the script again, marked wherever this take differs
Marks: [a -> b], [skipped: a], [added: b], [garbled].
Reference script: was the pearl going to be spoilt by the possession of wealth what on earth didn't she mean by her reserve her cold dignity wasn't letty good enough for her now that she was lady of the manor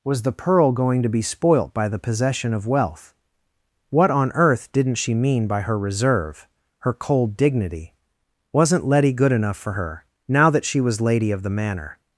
was the pearl going to be spoilt by the possession of wealth what on earth didn't she mean by her reserve her cold dignity wasn't letty good enough for her now that she was lady of the manor